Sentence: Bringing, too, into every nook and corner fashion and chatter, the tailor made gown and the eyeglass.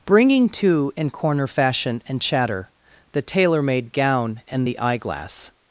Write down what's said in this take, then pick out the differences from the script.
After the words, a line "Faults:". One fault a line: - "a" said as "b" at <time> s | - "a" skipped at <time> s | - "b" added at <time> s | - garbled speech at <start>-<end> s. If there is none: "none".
Bringing, too, and corner fashion and chatter, the tailor made gown and the eyeglass.
Faults:
- "into every nook" skipped at 0.9 s